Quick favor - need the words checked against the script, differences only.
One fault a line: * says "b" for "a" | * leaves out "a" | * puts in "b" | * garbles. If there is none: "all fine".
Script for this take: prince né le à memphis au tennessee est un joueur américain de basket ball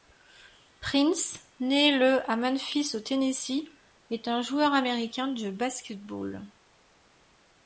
all fine